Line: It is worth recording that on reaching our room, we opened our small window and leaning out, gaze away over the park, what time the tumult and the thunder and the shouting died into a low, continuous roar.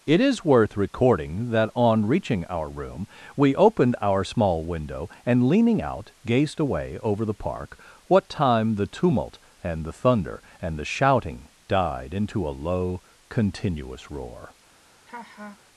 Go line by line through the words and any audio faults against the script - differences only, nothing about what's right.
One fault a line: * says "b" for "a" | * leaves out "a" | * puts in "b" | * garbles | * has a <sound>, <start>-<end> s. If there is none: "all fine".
* says "gazed" for "gaze"
* has a laugh, 15.1-15.6 s